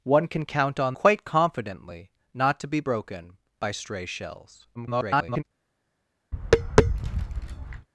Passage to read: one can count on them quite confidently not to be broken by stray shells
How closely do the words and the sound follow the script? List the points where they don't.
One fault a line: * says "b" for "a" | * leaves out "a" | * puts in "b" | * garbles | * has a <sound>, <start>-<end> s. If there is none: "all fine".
* leaves out "them"
* garbles
* has a tap, 6.3-7.9 s